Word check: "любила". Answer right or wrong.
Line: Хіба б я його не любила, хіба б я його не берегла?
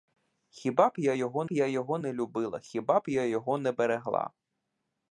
right